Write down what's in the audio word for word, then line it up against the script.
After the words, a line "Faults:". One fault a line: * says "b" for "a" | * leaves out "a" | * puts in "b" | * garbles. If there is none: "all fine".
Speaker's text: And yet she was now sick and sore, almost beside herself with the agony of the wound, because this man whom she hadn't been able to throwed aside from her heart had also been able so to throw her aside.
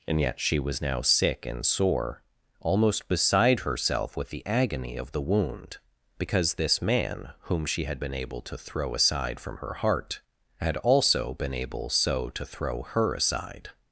And yet she was now sick and sore, almost beside herself with the agony of the wound, because this man whom she had been able to throw aside from her heart had also been able so to throw her aside.
Faults:
* says "had" for "hadn't"
* says "throw" for "throwed"